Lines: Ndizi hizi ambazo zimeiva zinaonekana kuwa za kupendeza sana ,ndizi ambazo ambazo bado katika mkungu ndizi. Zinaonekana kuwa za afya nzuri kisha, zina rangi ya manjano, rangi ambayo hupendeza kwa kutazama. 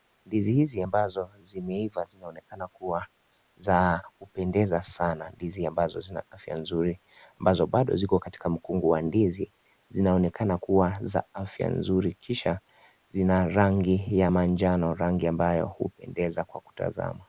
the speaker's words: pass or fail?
fail